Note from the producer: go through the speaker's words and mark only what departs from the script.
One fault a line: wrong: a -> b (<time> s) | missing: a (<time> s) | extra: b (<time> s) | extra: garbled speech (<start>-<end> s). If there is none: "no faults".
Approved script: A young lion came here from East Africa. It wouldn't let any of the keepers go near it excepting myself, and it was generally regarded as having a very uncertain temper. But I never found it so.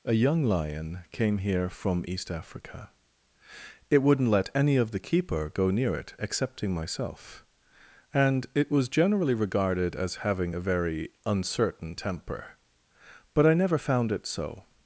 wrong: keepers -> keeper (5.0 s)